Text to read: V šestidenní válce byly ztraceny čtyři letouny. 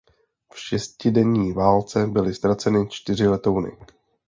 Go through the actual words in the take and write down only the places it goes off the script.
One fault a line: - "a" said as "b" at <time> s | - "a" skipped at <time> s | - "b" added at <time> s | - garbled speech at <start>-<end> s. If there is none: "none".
none